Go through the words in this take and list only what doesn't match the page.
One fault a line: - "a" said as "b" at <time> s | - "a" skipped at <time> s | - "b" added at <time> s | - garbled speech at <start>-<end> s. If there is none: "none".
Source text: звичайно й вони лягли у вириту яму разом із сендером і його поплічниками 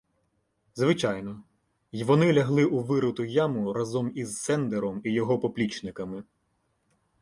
none